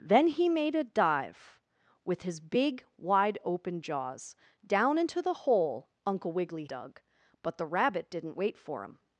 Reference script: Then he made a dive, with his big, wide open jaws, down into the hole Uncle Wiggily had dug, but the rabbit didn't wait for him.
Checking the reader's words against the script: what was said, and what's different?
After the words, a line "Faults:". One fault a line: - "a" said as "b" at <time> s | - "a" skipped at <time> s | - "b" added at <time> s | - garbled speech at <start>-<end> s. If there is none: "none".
Then he made a dive, with his big, wide open jaws, down into the hole Uncle Wiggily dug, but the rabbit didn't wait for him.
Faults:
- "had" skipped at 6.7 s